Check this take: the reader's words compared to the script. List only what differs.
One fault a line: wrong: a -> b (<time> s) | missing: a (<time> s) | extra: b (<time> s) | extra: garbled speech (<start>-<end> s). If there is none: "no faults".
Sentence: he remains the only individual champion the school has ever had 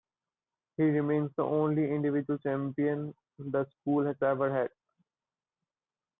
no faults